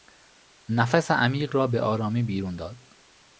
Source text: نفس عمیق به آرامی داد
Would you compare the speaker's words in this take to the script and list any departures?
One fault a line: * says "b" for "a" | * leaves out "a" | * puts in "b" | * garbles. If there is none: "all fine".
* puts in "را"
* puts in "بیرون"